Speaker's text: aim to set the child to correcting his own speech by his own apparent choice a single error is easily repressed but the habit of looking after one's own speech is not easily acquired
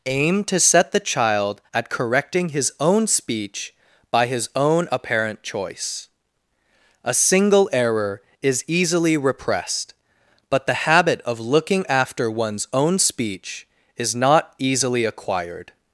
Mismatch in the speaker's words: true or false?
true